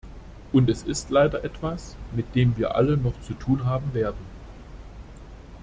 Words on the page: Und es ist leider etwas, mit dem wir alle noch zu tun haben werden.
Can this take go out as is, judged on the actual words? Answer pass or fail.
pass